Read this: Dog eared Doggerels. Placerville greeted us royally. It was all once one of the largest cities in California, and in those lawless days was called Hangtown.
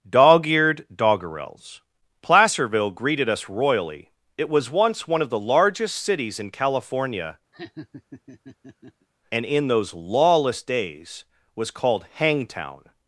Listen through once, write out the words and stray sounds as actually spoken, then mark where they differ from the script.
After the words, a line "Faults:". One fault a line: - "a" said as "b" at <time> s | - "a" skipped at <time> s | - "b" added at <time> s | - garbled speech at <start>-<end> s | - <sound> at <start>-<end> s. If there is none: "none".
Dog eared Doggerels. Placerville greeted us royally. It was once one of the largest cities in California, and in those lawless days was called Hangtown.
Faults:
- "all" skipped at 4.7 s
- laugh at 7.5-9.1 s